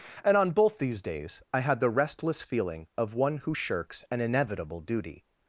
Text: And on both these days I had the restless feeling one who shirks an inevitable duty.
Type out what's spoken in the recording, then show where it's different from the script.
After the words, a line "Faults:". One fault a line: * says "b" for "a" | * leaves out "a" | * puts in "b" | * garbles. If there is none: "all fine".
And on both these days I had the restless feeling of one who shirks an inevitable duty.
Faults:
* puts in "of"